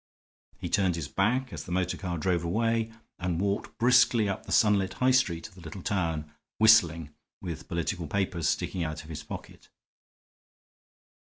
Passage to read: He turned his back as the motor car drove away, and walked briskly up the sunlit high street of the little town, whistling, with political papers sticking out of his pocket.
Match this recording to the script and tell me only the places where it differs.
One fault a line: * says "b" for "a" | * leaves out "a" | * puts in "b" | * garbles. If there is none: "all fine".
all fine